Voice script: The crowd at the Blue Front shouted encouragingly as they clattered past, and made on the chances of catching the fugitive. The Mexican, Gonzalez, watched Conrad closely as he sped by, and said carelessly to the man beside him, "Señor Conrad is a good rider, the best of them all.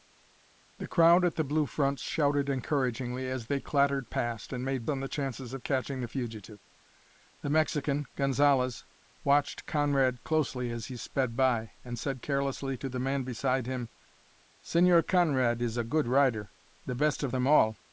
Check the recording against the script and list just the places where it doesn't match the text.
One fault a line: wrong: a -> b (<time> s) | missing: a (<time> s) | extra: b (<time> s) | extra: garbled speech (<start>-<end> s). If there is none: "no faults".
no faults